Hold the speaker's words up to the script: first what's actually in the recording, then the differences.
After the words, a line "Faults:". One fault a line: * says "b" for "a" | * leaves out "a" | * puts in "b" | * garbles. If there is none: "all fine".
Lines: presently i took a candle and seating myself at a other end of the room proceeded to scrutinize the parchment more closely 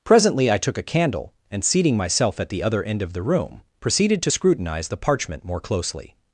presently i took a candle and seating myself at the other end of the room proceeded to scrutinize the parchment more closely
Faults:
* says "the" for "a"